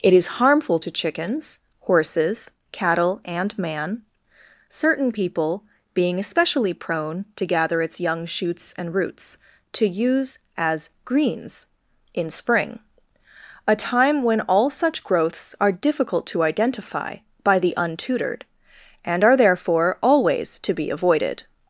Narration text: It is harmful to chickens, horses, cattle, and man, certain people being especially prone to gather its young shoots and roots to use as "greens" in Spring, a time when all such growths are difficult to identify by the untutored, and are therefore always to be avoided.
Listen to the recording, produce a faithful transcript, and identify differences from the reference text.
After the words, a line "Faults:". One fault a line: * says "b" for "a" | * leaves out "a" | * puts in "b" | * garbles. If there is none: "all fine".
It is harmful to chickens, horses, cattle, and man, certain people being especially prone to gather its young shoots and roots to use as "greens" in Spring, a time when all such growths are difficult to identify by the untutored, and are therefore always to be avoided.
Faults:
all fine